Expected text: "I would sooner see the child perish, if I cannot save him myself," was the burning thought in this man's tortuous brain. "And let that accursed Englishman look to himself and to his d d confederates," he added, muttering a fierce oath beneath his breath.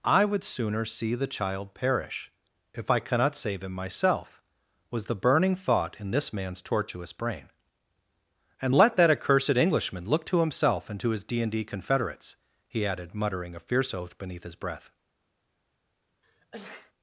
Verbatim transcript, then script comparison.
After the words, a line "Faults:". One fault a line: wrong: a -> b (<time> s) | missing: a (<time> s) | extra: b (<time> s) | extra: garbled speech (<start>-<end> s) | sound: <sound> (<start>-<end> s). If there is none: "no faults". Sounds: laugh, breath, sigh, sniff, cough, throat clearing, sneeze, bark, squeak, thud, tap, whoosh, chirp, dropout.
"I would sooner see the child perish, if I cannot save him myself," was the burning thought in this man's tortuous brain. "And let that accursed Englishman look to himself and to his d and d confederates," he added, muttering a fierce oath beneath his breath.
Faults:
extra: and (11.4 s)
sound: sneeze (16.2-16.9 s)